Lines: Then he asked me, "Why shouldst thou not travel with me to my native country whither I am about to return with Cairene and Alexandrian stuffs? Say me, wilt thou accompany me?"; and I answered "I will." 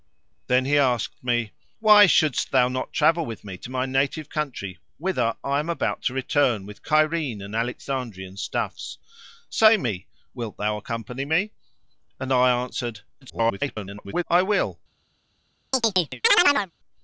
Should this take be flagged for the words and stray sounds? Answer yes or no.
yes